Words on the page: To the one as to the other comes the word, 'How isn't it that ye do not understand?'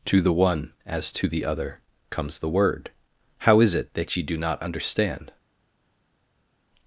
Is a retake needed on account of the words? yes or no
yes